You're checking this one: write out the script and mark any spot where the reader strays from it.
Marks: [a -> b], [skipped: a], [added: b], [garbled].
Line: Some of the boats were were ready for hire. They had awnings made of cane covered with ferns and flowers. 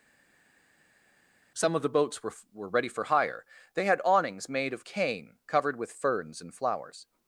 Some of the boats were were ready for hire. They had awnings made of cane covered with ferns and flowers.